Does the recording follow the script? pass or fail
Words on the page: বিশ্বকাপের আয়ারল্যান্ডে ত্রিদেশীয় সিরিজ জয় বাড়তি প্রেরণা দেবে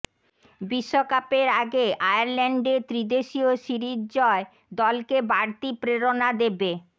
fail